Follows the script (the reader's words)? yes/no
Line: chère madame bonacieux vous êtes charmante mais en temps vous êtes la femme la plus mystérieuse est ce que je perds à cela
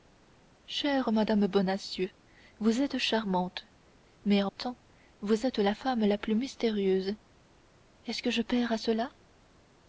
yes